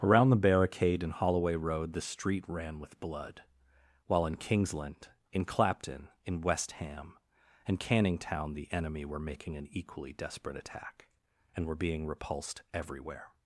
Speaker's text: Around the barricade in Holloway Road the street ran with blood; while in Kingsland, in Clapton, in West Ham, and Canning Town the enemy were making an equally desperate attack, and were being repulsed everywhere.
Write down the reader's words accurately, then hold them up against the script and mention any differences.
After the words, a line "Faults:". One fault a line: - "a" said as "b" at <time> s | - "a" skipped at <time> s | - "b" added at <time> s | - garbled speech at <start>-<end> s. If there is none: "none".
Around the barricade in Holloway Road the street ran with blood; while in Kingsland, in Clapton, in West Ham, and Canning Town the enemy were making an equally desperate attack, and were being repulsed everywhere.
Faults:
none